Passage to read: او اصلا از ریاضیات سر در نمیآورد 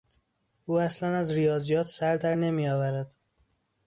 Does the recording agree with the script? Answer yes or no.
yes